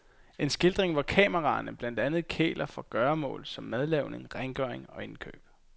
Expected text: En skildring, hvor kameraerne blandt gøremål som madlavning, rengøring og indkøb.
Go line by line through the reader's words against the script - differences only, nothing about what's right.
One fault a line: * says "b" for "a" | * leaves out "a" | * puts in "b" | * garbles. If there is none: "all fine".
* puts in "andet kæler for"